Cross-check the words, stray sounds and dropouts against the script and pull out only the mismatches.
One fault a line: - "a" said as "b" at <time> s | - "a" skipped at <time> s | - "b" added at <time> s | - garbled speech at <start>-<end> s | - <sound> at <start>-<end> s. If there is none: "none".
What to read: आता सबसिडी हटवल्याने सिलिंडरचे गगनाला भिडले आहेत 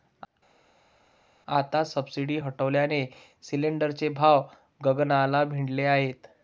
- "भाव" added at 4.1 s